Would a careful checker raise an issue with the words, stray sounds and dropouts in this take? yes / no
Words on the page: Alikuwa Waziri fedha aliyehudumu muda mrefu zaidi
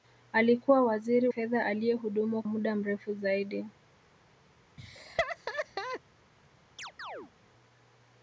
yes